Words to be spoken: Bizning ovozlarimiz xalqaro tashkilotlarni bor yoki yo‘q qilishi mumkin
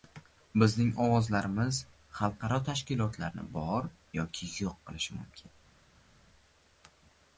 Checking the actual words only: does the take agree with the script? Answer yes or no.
yes